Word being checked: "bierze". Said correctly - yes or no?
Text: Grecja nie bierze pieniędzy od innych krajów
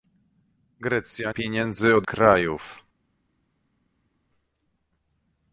no